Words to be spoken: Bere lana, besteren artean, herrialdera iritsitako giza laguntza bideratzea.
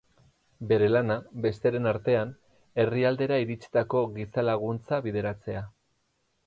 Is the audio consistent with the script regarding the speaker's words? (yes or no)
yes